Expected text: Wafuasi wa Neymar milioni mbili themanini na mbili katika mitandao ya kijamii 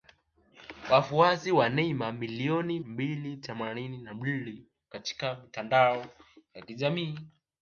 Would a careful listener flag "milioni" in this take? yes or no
no